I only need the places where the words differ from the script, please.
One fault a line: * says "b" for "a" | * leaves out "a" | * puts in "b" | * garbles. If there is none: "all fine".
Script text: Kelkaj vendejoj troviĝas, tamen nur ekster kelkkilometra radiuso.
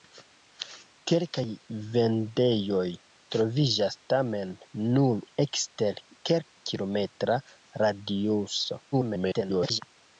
* garbles